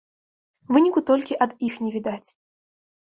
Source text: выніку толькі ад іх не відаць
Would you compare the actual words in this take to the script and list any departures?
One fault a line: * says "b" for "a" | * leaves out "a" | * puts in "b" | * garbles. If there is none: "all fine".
all fine